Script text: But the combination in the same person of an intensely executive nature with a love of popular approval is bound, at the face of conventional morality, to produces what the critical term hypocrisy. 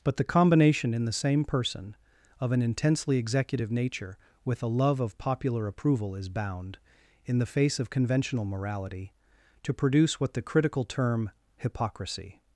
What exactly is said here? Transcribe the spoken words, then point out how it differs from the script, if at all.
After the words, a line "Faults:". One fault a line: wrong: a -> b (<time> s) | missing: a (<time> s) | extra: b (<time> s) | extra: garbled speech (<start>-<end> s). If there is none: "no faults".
But the combination in the same person of an intensely executive nature with a love of popular approval is bound, in the face of conventional morality, to produce what the critical term hypocrisy.
Faults:
wrong: at -> in (7.2 s)
wrong: produces -> produce (9.7 s)